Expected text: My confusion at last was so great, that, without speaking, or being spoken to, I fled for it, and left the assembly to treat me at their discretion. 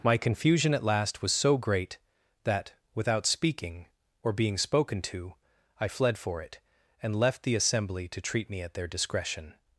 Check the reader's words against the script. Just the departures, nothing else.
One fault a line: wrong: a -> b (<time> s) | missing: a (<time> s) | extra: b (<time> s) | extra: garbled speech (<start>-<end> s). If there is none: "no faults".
no faults